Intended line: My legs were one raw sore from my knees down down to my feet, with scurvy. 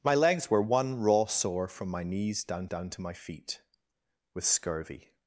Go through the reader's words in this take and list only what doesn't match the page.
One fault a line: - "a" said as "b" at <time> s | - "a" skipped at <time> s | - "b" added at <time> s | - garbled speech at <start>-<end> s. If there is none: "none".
none